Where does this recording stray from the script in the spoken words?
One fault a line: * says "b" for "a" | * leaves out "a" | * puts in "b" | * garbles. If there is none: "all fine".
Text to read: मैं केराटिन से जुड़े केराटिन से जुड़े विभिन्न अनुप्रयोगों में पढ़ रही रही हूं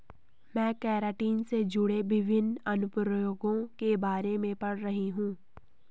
* says "विभिन्न अनुप्रयोगों के बारे" for "केराटिन से जुड़े विभिन्न अनुप्रयोगों"
* leaves out "रही"